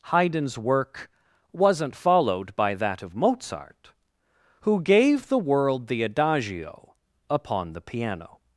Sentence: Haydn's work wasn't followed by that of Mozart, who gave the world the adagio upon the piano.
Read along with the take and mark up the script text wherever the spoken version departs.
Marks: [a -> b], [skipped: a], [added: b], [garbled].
Haydn's work wasn't followed by that of Mozart, who gave the world the adagio upon the piano.